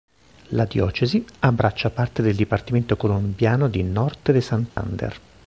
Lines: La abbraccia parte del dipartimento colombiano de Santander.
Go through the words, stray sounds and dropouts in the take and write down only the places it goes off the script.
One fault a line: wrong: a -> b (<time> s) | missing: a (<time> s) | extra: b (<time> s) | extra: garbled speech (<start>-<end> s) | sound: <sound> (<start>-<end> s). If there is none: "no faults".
extra: diocesi (0.7 s)
extra: di Norte (3.7 s)
sound: dropout (4.7-4.8 s)